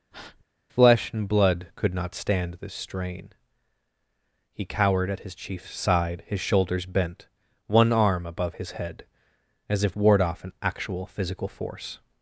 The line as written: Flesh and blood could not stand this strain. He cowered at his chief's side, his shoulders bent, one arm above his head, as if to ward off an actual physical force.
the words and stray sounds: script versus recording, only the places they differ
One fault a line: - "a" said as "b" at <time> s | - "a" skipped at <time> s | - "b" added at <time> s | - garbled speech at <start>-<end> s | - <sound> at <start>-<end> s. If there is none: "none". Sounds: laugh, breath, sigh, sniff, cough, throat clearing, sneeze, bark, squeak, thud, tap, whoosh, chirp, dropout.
- breath at 0.1-0.4 s
- "to" skipped at 10.0 s